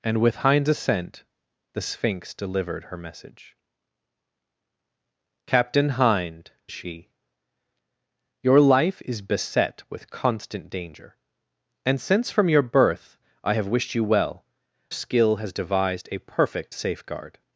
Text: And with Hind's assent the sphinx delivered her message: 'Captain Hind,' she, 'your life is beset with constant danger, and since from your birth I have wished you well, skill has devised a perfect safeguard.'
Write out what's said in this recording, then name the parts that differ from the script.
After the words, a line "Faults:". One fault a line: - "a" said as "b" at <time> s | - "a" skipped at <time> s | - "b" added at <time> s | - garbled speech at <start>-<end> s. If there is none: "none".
And with Hind's assent the sphinx delivered her message: 'Captain Hind,' she, 'your life is beset with constant danger, and since from your birth I have wished you well, skill has devised a perfect safeguard.'
Faults:
none